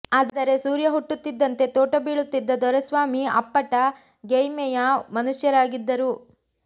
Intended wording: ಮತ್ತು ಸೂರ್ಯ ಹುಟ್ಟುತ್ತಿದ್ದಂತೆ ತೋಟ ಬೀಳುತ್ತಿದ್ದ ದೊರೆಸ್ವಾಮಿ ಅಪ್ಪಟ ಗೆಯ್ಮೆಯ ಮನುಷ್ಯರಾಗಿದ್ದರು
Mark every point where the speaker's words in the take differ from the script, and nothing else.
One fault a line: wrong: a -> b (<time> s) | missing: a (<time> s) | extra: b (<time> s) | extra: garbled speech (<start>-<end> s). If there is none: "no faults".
wrong: ಮತ್ತು -> ಆದರೆ (0.2 s)